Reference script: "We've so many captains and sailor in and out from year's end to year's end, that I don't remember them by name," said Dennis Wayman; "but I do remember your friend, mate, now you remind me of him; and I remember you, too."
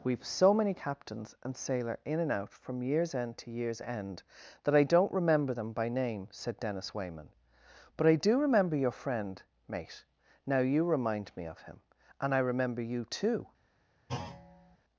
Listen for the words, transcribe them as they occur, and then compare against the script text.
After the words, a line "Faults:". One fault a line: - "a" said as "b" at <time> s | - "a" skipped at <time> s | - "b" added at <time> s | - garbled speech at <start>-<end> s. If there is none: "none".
"We've so many captains and sailor in and out from year's end to year's end, that I don't remember them by name," said Dennis Wayman; "but I do remember your friend, mate, now you remind me of him; and I remember you, too."
Faults:
none